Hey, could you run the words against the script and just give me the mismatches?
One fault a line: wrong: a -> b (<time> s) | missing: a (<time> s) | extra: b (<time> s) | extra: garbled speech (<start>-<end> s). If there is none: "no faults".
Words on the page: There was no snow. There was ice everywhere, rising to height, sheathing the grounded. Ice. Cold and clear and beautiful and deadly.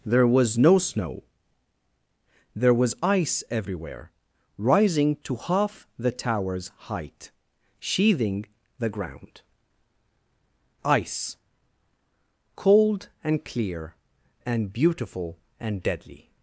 extra: half the tower's (5.3 s)
wrong: grounded -> ground (8.9 s)